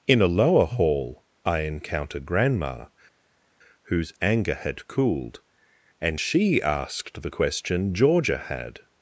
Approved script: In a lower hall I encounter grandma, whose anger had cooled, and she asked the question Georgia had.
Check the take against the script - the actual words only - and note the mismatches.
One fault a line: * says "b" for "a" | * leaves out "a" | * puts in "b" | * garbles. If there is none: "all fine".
all fine